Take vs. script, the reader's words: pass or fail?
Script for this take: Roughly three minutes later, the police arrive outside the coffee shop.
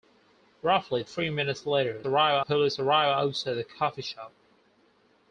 fail